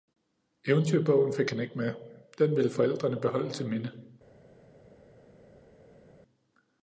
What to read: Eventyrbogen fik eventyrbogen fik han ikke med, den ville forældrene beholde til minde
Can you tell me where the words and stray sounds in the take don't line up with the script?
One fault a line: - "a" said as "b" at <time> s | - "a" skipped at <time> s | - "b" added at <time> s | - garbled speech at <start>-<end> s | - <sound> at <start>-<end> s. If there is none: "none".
- "eventyrbogen fik" skipped at 1.5 s